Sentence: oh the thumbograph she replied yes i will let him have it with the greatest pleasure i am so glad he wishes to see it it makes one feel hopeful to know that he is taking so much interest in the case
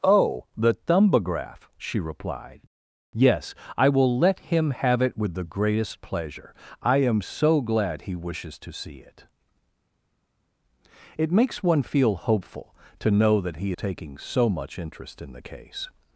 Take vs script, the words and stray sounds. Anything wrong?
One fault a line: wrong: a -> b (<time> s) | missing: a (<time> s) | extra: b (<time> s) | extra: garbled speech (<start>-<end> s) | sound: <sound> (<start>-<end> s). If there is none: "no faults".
missing: is (13.7 s)